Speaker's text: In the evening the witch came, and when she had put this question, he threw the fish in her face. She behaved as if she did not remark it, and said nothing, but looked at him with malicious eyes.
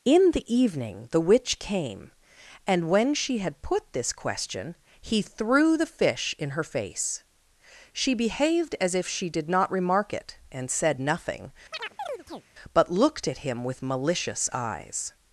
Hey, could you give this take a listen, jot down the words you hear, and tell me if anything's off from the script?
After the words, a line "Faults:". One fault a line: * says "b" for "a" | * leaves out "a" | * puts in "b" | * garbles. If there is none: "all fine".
In the evening the witch came, and when she had put this question, he threw the fish in her face. She behaved as if she did not remark it, and said nothing, but looked at him with malicious eyes.
Faults:
all fine